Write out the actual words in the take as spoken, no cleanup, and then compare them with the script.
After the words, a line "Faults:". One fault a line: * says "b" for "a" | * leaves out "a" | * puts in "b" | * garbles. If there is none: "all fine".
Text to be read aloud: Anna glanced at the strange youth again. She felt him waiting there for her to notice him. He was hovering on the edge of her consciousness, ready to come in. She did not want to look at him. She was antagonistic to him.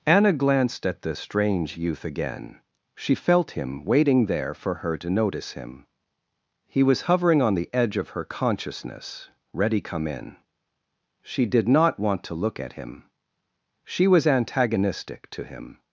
Anna glanced at the strange youth again. She felt him waiting there for her to notice him. He was hovering on the edge of her consciousness, ready come in. She did not want to look at him. She was antagonistic to him.
Faults:
* leaves out "to"